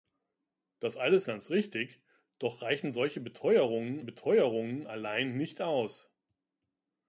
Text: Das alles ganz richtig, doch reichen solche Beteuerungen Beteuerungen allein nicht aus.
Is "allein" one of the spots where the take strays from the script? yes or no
no